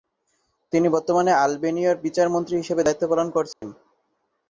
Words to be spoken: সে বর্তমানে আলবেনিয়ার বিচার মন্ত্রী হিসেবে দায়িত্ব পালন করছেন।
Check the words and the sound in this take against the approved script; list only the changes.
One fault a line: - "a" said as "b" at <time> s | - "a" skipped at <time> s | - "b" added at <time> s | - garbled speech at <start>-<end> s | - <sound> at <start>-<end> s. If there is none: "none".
- "সে" said as "তিনি" at 0.7 s
- dropout at 3.5-3.6 s